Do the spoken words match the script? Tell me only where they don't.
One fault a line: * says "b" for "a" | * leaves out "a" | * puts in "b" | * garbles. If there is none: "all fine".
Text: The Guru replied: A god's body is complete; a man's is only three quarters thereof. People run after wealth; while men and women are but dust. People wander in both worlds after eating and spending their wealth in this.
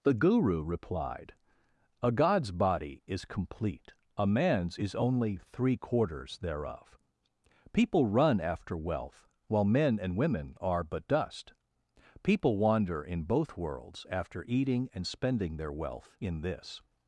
all fine